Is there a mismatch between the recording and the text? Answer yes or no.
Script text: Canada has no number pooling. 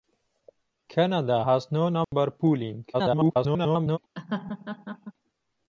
yes